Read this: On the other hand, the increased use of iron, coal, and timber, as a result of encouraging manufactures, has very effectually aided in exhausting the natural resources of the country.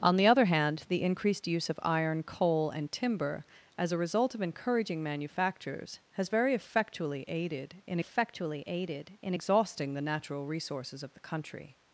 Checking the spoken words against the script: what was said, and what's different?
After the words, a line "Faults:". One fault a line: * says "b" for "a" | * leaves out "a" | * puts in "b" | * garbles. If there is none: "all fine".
On the other hand, the increased use of iron, coal, and timber, as a result of encouraging manufactures, has very effectually aided in effectually aided in exhausting the natural resources of the country.
Faults:
* puts in "effectually aided in"